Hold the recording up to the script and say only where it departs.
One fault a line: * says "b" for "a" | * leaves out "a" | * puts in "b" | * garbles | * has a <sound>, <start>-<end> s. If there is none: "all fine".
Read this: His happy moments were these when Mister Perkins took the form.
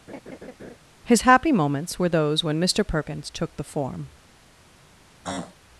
* has a laugh, 0.1-0.8 s
* says "those" for "these"
* has a throat clearing, 5.2-5.6 s